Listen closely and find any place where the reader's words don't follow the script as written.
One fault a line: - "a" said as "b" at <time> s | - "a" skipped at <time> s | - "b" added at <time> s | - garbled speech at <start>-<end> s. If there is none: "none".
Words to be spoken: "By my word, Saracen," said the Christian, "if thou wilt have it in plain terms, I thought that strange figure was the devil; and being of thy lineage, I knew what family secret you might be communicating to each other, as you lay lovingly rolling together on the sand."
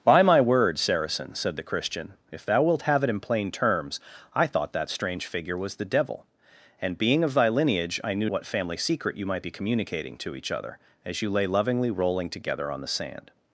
none